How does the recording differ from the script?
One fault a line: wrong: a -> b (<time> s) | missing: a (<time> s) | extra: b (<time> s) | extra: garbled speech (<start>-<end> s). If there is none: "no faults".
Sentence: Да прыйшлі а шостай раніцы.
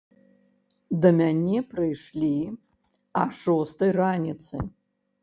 extra: мяне (1.2 s)